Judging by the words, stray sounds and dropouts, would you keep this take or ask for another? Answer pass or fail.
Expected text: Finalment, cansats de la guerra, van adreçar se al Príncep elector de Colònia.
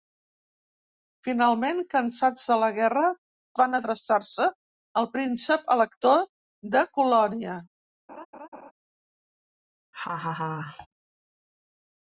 fail